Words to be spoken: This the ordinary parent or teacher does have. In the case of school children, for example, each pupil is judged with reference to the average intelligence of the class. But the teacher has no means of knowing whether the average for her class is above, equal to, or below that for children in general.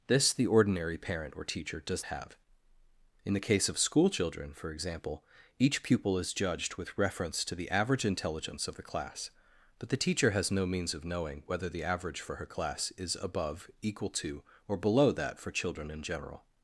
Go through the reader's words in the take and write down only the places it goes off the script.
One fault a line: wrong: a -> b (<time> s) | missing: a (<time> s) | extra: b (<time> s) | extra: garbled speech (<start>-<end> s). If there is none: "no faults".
no faults